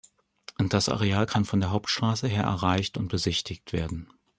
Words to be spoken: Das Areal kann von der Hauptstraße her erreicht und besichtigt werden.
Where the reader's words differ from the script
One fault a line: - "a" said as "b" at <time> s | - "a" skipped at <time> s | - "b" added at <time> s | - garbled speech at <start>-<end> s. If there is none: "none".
none